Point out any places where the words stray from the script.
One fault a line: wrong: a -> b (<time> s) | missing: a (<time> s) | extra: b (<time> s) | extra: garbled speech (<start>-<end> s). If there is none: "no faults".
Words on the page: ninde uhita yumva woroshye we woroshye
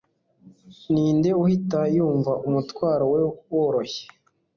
wrong: woroshye -> umutwaro (2.5 s)